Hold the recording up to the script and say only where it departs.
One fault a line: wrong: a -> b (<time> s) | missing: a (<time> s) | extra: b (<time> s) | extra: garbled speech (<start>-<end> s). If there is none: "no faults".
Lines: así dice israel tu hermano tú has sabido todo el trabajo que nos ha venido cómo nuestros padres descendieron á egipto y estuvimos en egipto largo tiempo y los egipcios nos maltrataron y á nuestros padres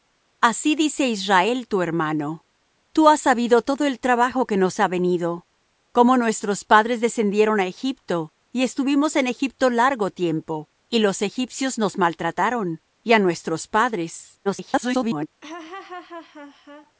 extra: garbled speech (14.4-15.3 s)